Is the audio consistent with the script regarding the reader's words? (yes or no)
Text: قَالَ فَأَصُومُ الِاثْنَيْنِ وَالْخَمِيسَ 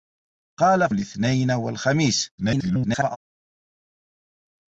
no